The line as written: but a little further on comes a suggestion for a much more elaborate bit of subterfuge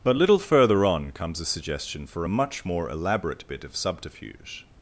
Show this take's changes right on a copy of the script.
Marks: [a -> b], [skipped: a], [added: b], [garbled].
but [skipped: a] little further on comes a suggestion for a much more elaborate bit of subterfuge